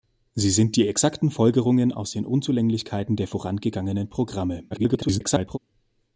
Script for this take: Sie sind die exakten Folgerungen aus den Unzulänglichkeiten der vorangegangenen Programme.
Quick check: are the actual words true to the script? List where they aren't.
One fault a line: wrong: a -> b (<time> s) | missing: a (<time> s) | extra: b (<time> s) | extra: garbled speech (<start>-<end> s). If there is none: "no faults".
extra: garbled speech (4.7-5.6 s)